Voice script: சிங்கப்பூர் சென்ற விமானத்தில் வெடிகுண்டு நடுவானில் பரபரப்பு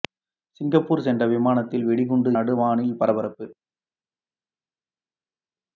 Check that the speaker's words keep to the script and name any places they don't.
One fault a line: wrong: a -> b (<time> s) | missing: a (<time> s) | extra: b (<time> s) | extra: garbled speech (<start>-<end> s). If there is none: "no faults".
no faults